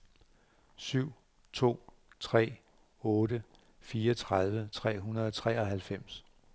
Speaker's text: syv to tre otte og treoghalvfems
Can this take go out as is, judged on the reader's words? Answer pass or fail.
fail